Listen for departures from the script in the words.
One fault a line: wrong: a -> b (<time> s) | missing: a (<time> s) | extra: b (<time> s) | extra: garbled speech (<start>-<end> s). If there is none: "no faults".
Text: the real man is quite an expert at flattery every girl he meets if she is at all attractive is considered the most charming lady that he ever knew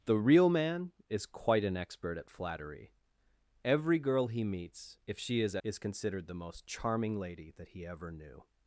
missing: at all attractive (5.6 s)